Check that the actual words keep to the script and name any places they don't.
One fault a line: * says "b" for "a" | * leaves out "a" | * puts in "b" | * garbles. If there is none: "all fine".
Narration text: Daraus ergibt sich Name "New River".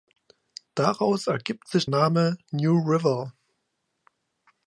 all fine